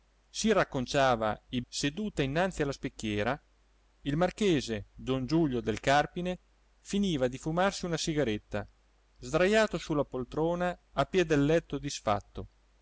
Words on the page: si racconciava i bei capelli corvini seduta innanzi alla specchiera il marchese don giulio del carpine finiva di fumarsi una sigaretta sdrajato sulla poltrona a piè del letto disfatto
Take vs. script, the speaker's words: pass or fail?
fail